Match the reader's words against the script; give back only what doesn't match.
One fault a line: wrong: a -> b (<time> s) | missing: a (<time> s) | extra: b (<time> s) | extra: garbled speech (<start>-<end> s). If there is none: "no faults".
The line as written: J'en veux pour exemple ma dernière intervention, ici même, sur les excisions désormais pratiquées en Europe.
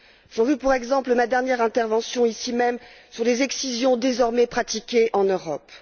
no faults